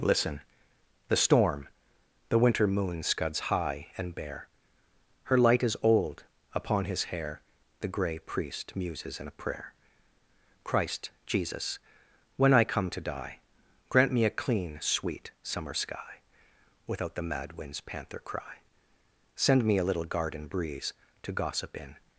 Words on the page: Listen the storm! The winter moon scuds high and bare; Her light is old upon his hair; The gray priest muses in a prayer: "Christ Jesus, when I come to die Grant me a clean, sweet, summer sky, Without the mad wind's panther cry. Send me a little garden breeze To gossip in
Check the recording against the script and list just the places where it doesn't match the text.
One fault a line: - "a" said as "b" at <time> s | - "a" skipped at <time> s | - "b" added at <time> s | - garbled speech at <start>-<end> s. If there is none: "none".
none